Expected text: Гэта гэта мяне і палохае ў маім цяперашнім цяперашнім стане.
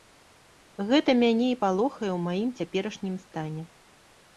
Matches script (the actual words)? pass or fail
fail